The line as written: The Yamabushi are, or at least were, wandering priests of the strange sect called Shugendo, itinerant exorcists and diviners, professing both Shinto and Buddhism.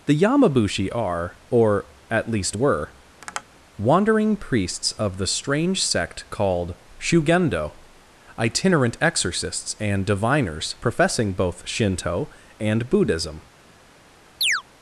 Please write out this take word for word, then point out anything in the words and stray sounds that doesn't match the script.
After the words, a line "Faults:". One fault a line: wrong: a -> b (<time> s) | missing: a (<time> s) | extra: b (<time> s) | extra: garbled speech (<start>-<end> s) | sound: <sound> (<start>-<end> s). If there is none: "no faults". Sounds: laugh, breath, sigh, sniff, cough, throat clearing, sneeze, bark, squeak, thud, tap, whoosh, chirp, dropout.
The Yamabushi are, or at least were, wandering priests of the strange sect called Shugendo, itinerant exorcists and diviners, professing both Shinto and Buddhism.
Faults:
sound: tap (3.2-3.4 s)
sound: chirp (14.4-14.6 s)